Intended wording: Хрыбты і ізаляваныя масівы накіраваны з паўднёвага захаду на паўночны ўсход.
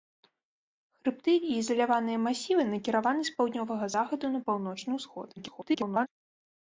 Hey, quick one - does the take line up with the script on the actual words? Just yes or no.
no